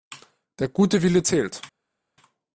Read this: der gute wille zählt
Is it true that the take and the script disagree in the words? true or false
false